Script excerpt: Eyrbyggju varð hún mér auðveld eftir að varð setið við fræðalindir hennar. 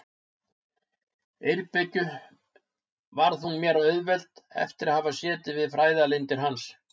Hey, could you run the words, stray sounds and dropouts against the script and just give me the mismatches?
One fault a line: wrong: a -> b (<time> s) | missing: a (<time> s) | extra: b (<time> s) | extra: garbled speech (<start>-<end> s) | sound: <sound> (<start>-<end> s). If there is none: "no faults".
wrong: varð -> hafa (5.0 s)
wrong: hennar -> hans (6.5 s)